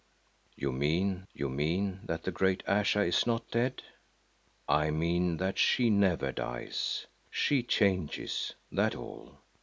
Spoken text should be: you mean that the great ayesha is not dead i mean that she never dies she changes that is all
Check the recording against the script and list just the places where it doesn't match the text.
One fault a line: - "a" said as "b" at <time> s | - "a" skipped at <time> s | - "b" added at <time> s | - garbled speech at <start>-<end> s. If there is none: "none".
- "you mean" added at 1.3 s
- "is" skipped at 8.9 s